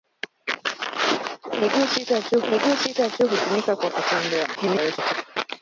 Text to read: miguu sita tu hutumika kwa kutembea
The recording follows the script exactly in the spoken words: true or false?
false